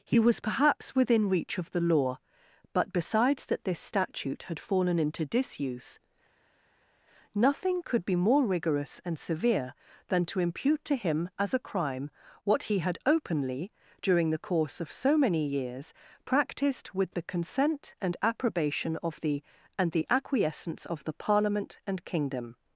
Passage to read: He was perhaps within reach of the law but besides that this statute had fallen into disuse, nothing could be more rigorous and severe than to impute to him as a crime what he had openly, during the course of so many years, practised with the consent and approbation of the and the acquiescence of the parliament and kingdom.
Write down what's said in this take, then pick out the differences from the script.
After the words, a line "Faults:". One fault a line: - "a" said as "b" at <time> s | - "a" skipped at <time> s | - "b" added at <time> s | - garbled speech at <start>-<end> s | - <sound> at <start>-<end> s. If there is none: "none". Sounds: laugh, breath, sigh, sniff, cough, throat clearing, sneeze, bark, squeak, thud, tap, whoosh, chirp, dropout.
He was perhaps within reach of the law but besides that this statute had fallen into disuse, nothing could be more rigorous and severe than to impute to him as a crime what he had openly, during the course of so many years, practised with the consent and approbation of the and the acquiescence of the parliament and kingdom.
Faults:
none